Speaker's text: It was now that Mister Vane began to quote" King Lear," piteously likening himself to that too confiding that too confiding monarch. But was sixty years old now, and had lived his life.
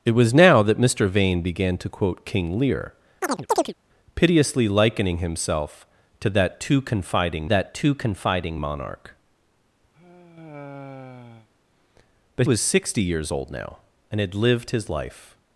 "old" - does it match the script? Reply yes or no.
yes